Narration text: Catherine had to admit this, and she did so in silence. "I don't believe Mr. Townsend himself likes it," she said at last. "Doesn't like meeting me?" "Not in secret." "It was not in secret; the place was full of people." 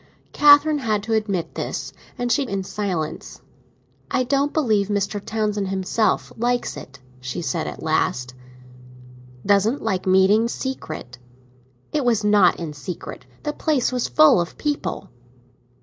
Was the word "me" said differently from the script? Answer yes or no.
yes